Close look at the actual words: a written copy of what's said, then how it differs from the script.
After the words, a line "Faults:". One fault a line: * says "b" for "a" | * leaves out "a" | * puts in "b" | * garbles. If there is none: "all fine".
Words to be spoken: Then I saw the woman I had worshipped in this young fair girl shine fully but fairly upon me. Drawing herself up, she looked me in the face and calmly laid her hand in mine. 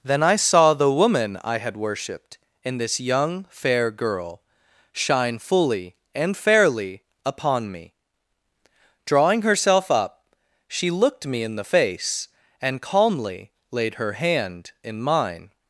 Then I saw the woman I had worshipped in this young fair girl shine fully and fairly upon me. Drawing herself up, she looked me in the face and calmly laid her hand in mine.
Faults:
* says "and" for "but"